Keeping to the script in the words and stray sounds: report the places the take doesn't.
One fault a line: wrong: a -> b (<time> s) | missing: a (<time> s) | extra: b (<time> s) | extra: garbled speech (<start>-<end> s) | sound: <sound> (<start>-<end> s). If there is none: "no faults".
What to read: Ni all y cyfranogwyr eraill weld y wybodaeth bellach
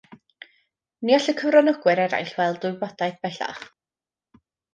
no faults